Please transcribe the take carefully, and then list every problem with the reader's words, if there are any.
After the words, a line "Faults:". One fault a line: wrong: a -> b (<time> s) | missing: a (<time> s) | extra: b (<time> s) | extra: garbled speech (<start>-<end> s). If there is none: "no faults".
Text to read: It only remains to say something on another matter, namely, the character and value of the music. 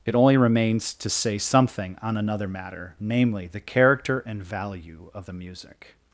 It only remains to say something on another matter, namely, the character and value of the music.
Faults:
no faults